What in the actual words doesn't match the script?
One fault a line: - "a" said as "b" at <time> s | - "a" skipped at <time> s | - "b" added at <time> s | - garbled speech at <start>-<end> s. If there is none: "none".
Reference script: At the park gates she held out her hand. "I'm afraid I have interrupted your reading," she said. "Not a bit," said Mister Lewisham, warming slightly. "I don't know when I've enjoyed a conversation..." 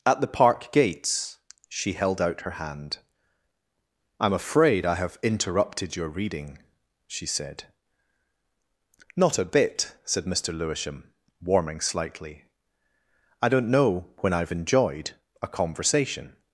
none